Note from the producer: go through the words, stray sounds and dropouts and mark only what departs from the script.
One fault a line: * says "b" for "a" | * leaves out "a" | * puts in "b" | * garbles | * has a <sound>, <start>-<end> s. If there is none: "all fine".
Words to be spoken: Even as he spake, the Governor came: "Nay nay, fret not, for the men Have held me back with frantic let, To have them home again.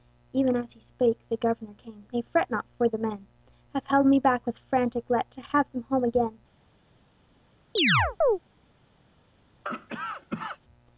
* leaves out "nay"
* has a chirp, 7.8-8.4 s
* has a cough, 9.6-10.6 s